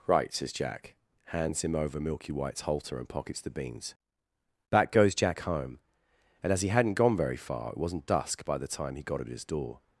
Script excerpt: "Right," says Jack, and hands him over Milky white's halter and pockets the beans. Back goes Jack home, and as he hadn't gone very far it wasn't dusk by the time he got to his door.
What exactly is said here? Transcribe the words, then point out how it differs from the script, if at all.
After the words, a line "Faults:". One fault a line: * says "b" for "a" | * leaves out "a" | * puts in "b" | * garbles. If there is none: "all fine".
"Right," says Jack, hands him over Milky white's halter and pockets the beans. Back goes Jack home, and as he hadn't gone very far it wasn't dusk by the time he got at his door.
Faults:
* leaves out "and"
* says "at" for "to"